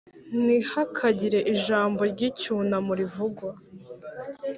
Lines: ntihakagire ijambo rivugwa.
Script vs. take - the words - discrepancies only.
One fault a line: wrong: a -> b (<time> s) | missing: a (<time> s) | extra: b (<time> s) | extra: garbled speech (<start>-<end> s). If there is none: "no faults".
extra: ry'icyunamo (2.1 s)